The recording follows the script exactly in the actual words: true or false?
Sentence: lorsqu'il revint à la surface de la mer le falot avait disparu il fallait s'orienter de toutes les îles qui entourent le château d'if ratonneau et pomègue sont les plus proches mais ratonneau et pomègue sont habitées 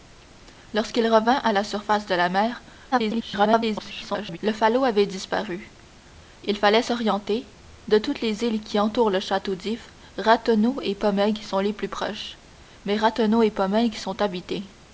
false